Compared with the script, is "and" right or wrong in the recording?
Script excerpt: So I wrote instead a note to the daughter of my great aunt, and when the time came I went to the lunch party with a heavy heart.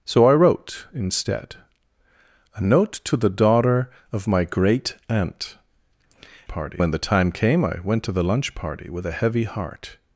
wrong